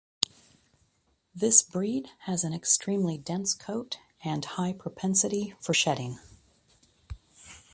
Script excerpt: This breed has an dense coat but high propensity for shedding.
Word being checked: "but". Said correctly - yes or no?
no